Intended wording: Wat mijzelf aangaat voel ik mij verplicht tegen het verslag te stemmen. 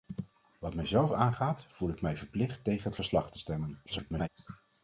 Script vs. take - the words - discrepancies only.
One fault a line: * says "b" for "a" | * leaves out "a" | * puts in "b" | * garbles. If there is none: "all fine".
* garbles